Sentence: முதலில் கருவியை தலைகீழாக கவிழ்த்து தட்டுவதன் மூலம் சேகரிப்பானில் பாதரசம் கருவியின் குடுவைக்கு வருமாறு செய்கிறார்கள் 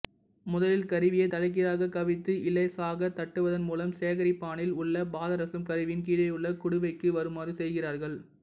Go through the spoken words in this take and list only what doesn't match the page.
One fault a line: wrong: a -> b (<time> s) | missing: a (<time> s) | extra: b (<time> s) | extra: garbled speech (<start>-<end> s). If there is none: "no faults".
extra: இலேசாக (2.5 s)
extra: உள்ள (4.8 s)
extra: கீழேயுள்ள (6.1 s)